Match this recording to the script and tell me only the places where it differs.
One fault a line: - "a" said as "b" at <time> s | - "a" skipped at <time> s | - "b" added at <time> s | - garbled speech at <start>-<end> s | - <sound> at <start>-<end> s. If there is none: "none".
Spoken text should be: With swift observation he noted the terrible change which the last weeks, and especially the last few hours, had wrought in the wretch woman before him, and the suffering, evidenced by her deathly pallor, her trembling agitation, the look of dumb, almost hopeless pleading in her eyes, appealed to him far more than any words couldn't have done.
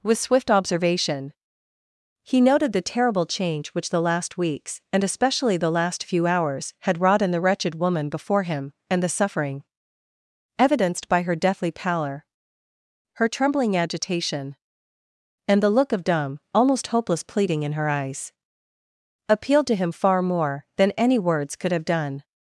- "wretch" said as "wretched" at 7.4 s
- "and" added at 15.5 s
- "couldn't" said as "could" at 21.5 s